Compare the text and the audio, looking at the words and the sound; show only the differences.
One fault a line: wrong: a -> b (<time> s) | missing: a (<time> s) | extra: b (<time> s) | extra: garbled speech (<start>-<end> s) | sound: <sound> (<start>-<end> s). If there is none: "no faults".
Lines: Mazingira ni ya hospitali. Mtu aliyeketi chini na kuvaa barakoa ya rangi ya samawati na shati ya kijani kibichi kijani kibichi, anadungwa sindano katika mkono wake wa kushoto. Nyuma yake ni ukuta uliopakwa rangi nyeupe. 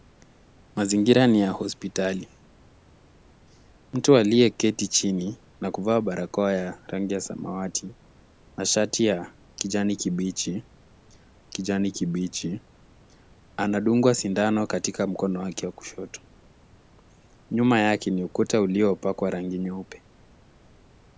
no faults